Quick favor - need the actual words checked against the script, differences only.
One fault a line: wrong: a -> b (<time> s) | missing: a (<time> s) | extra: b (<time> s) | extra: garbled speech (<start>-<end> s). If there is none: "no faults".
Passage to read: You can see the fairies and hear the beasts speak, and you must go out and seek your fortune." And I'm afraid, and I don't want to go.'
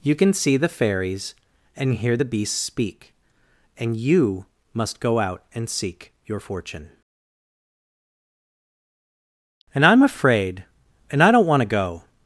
no faults